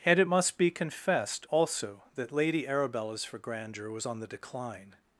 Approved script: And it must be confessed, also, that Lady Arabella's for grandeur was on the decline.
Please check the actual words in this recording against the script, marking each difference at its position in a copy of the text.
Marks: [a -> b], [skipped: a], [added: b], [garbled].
And it must be confessed, also, that Lady Arabella's for grandeur was on the decline.